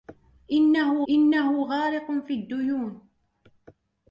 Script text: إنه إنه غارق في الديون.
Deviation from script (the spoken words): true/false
false